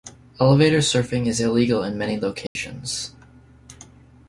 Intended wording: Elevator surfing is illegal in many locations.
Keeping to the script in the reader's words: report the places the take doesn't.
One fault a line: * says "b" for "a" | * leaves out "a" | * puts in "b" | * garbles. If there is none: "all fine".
all fine